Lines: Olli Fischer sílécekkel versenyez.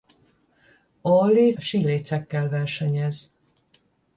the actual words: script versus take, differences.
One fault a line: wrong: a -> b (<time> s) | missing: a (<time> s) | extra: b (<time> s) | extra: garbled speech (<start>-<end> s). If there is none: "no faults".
missing: Fischer (1.5 s)